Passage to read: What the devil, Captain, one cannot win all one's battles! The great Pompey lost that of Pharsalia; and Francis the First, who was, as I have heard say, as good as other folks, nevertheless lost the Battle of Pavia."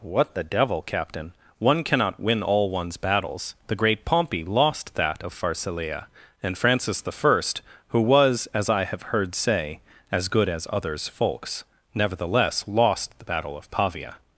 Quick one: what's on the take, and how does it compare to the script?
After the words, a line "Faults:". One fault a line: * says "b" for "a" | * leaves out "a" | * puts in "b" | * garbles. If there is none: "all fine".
What the devil, Captain, one cannot win all one's battles! The great Pompey lost that of Pharsalia; and Francis the First, who was, as I have heard say, as good as others folks, nevertheless lost the Battle of Pavia."
Faults:
* says "others" for "other"